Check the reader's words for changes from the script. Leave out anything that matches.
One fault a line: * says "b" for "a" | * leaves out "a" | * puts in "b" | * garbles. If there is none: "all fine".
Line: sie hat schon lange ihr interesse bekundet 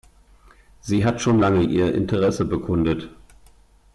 all fine